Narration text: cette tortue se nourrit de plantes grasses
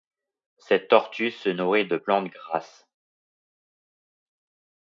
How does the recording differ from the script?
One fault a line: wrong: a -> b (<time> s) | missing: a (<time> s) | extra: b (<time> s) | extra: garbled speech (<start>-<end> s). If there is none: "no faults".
no faults